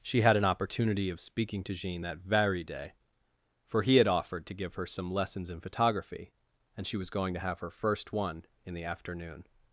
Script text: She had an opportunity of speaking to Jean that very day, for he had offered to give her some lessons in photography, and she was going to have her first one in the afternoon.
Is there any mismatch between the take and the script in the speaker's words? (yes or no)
no